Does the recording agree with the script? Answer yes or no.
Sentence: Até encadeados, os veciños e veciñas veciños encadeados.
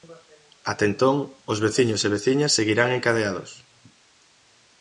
no